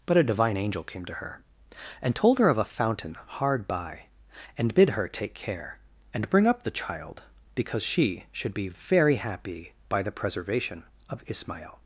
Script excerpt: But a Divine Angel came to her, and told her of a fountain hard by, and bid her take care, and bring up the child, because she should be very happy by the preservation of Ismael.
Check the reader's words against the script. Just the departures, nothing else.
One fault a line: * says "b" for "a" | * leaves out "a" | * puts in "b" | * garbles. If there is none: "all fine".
all fine